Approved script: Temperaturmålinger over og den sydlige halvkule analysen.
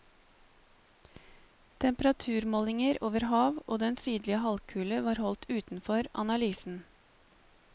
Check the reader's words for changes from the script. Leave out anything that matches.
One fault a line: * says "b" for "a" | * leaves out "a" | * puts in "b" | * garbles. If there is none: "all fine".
* puts in "hav"
* puts in "var holdt utenfor"